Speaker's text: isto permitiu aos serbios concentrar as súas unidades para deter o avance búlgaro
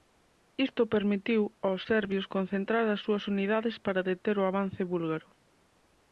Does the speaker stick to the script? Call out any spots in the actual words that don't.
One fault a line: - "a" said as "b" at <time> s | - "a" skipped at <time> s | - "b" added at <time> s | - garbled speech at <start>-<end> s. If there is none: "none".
none